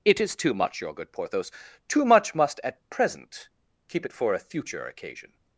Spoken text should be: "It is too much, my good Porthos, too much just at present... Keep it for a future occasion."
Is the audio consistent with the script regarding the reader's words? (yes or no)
no